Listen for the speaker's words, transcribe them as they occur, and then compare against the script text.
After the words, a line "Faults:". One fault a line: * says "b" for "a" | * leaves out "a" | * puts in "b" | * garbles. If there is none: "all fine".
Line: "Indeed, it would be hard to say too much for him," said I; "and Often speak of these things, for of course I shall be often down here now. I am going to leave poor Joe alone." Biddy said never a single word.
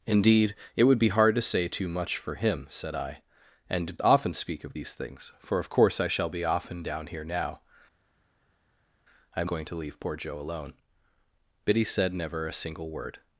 "Indeed, it would be hard to say too much for him," said I; "and Often speak of these things, for of course I shall be often down here now. I am going to leave poor Joe alone." Biddy said never a single word.
Faults:
all fine